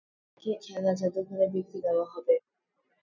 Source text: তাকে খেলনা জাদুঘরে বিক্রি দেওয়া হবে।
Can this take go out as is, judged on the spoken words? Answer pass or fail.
pass